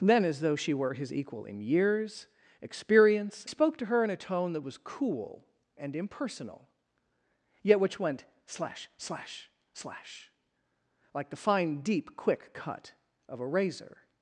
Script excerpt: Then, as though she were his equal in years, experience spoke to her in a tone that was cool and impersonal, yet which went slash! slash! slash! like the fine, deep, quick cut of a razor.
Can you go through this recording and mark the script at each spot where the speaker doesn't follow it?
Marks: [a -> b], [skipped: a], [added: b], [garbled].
Then, as though she were his equal in years, experience spoke to her in a tone that was cool and impersonal, yet which went slash! slash! slash! like the fine, deep, quick cut of a razor.